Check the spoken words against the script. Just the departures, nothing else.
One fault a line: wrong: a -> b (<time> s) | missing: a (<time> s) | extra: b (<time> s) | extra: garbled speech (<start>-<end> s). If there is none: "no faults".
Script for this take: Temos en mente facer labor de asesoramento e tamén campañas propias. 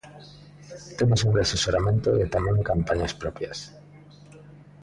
missing: mente facer labor (1.3 s)